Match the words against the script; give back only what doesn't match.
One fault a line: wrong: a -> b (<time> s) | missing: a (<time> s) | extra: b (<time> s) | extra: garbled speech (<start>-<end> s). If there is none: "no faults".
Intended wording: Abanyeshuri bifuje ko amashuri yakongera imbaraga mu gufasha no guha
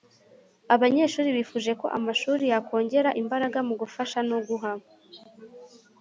no faults